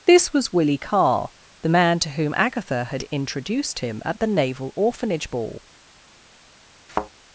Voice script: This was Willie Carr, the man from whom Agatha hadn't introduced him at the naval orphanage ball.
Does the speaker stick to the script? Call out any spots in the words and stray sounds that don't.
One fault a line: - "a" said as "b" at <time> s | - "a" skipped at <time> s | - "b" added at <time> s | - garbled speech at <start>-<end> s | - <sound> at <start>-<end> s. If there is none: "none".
- "from" said as "to" at 2.0 s
- "hadn't" said as "had" at 2.8 s
- thud at 6.9-7.1 s